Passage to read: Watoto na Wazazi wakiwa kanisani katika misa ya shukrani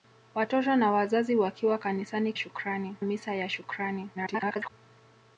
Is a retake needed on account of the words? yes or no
yes